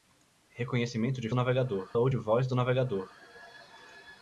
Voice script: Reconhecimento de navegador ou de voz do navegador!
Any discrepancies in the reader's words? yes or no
no